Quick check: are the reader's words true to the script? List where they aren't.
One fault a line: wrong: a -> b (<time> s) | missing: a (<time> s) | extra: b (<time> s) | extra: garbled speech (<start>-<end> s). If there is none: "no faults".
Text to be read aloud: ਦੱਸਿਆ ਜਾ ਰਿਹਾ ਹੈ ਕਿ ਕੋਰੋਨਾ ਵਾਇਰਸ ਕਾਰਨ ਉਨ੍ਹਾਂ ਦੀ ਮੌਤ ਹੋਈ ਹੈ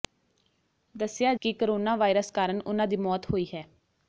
missing: ਜਾ ਰਿਹਾ ਹੈ (1.3 s)